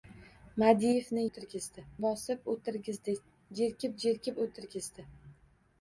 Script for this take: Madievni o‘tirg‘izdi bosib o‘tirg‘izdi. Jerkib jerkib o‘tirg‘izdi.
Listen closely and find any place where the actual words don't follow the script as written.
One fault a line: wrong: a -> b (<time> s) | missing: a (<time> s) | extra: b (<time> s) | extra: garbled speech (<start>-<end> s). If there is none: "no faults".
no faults